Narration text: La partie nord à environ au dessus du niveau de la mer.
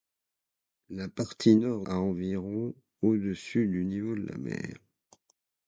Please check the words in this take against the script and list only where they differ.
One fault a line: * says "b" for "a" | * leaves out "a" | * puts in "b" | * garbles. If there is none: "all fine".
all fine